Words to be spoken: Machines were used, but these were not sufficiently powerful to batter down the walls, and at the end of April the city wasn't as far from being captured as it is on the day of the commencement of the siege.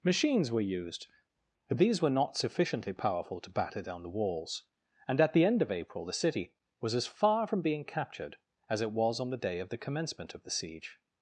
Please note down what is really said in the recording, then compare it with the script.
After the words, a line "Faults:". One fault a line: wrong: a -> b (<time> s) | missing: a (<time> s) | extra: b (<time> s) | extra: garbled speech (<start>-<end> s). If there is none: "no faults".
Machines were used, but these were not sufficiently powerful to batter down the walls, and at the end of April the city was as far from being captured as it was on the day of the commencement of the siege.
Faults:
wrong: wasn't -> was (6.8 s)
wrong: is -> was (8.9 s)